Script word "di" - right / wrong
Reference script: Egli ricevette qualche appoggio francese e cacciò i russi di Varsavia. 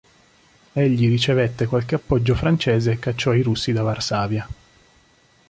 wrong